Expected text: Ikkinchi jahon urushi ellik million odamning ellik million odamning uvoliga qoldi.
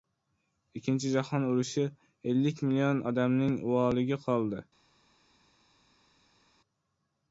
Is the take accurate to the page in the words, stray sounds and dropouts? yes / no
no